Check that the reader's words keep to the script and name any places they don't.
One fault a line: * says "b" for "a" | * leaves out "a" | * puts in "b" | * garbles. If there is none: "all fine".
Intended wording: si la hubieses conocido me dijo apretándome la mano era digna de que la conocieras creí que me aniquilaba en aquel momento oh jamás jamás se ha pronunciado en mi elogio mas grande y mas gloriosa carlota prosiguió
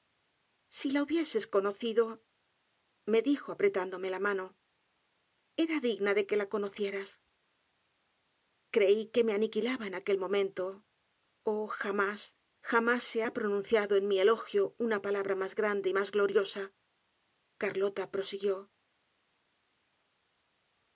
* puts in "una palabra"